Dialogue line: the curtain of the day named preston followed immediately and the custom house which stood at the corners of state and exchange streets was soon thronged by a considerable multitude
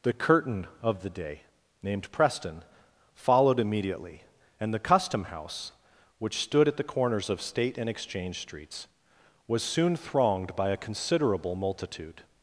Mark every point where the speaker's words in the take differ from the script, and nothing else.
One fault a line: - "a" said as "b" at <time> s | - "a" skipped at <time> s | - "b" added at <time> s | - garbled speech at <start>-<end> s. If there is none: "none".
none